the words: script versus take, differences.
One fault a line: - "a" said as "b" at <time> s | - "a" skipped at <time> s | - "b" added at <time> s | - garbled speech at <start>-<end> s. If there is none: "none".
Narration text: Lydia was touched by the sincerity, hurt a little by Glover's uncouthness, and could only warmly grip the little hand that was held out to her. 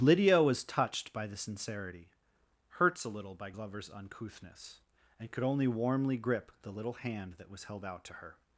- "hurt" said as "hurts" at 2.7 s